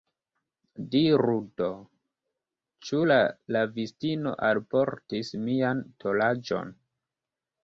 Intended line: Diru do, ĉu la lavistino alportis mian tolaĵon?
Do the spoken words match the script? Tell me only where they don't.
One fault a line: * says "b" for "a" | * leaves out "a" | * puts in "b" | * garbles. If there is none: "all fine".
all fine